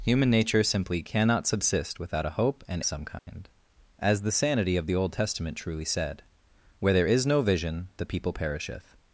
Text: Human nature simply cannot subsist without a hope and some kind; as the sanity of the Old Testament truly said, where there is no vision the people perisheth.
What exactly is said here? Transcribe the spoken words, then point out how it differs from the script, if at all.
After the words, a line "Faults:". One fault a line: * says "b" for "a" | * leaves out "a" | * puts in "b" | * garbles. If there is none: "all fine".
Human nature simply cannot subsist without a hope and some kind; as the sanity of the Old Testament truly said, where there is no vision the people perisheth.
Faults:
all fine